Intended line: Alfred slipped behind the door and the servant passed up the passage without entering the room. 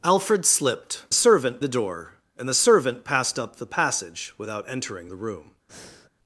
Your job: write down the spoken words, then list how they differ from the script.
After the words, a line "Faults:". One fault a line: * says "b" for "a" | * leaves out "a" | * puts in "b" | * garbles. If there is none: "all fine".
Alfred slipped servant the door and the servant passed up the passage without entering the room.
Faults:
* says "servant" for "behind"